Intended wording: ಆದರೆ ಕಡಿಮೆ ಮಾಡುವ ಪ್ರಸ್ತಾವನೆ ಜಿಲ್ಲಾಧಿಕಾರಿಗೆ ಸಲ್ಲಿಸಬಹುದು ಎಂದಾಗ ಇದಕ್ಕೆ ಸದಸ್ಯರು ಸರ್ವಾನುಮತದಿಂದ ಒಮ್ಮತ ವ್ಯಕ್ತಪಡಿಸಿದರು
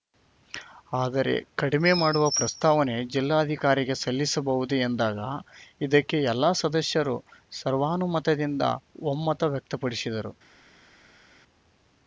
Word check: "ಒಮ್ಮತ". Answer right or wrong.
right